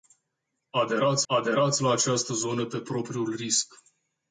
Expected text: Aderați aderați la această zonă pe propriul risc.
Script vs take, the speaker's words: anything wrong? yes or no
no